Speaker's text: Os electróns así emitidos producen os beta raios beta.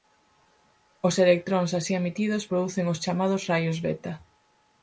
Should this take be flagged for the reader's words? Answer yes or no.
yes